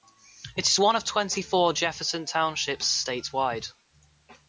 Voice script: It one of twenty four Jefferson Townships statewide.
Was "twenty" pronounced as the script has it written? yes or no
yes